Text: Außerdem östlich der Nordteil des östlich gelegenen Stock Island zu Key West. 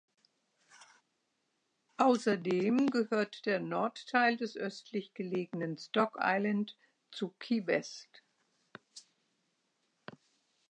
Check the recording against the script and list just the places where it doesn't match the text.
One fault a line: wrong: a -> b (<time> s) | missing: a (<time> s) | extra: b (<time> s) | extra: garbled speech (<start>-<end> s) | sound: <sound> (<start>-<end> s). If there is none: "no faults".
wrong: östlich -> gehört (2.9 s)